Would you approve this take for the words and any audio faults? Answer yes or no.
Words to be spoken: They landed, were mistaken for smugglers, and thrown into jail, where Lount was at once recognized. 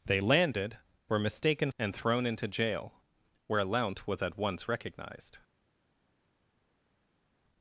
no